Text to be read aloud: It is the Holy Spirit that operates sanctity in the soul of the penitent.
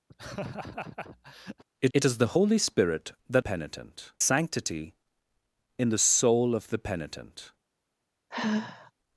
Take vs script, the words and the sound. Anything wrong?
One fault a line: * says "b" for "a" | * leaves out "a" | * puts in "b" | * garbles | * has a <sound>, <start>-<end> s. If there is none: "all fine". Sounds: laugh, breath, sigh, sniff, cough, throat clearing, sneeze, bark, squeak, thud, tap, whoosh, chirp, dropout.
* has a laugh, 0.1-1.6 s
* puts in "it"
* says "penitent" for "operates"
* has a sigh, 8.3-8.9 s